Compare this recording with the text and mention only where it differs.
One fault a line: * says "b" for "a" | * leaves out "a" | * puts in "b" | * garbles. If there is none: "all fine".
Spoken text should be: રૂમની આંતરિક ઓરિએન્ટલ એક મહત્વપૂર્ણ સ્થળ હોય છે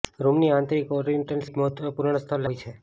all fine